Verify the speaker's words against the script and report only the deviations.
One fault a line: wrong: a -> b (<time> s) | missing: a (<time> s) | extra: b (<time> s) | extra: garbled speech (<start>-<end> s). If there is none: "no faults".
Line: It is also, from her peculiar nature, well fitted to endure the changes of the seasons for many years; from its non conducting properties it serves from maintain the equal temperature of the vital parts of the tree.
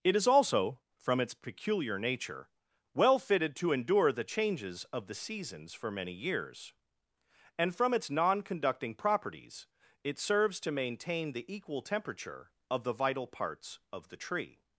wrong: her -> its (1.2 s)
extra: and (7.5 s)
wrong: from -> to (10.6 s)